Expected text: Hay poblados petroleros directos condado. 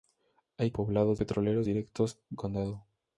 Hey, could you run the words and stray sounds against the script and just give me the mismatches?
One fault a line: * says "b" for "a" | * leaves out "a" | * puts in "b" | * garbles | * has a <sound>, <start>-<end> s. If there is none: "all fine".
all fine